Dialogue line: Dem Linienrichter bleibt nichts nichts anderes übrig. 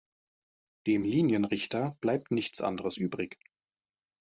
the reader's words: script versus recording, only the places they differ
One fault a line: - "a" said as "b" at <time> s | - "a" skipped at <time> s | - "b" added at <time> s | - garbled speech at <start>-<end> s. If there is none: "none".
- "nichts" skipped at 2.6 s